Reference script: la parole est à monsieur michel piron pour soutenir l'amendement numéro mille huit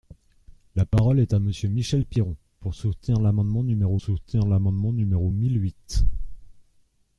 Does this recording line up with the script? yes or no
no